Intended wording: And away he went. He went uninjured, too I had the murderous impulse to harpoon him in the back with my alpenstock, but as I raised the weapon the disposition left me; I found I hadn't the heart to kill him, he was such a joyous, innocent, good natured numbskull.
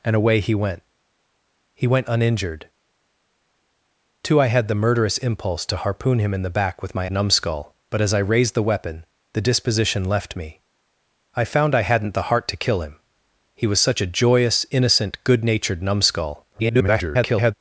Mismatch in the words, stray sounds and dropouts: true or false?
true